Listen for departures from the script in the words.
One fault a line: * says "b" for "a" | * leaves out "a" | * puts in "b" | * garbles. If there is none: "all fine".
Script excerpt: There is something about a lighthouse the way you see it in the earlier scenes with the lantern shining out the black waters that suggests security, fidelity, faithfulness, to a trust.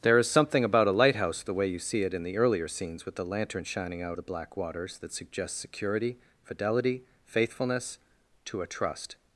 all fine